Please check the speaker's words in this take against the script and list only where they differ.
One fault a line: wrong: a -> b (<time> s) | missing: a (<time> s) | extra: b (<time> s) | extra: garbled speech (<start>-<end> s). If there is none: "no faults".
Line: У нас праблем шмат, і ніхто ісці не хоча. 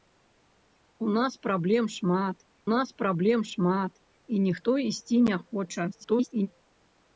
extra: нас праблем шмат (2.7 s)
extra: garbled speech (5.9-6.5 s)